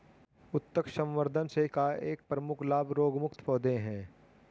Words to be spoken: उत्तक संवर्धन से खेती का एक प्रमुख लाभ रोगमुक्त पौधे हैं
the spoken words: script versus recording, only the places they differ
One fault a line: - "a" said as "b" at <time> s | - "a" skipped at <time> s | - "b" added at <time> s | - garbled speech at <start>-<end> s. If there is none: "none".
- "खेती" skipped at 1.7 s